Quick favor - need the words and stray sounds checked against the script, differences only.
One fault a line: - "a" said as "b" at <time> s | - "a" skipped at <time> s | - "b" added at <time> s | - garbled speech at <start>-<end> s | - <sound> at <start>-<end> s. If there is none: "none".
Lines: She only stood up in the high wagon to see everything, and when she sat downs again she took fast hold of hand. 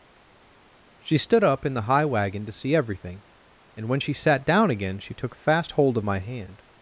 - "only" skipped at 1.2 s
- "downs" said as "down" at 4.5 s
- "my" added at 6.0 s